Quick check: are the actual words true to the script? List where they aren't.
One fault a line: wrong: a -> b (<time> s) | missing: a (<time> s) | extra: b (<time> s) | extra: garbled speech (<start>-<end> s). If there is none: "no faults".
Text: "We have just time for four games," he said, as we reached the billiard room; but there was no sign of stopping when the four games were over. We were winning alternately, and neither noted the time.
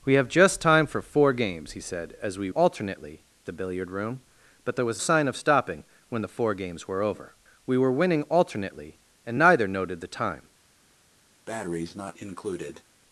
wrong: reached -> alternately (2.5 s)
missing: no (5.0 s)